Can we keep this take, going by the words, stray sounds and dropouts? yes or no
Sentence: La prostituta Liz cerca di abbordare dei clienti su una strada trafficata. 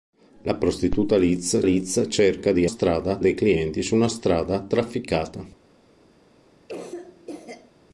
no